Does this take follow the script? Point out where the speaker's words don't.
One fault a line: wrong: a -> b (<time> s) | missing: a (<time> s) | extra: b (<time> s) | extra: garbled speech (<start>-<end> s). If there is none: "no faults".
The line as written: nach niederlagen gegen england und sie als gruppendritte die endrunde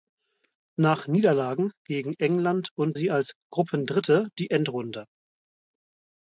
no faults